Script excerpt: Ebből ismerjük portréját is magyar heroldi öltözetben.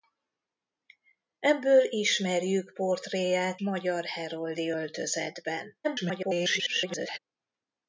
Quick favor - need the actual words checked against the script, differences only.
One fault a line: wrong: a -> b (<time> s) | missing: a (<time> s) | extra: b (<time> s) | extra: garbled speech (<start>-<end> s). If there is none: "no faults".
missing: is (3.6 s)
extra: garbled speech (5.8-7.2 s)